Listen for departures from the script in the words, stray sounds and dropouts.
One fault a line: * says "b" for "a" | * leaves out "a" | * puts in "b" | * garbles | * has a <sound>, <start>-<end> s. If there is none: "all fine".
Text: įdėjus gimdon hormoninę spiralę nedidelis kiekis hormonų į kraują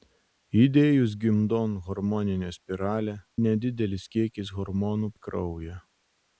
all fine